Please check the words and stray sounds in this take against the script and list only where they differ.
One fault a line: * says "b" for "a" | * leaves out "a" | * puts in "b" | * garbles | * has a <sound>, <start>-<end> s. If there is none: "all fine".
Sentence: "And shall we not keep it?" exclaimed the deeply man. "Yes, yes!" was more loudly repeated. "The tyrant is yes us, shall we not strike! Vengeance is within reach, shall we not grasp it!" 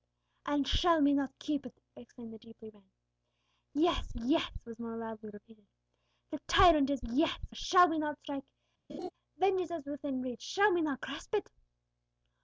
* has a laugh, 8.9-9.1 s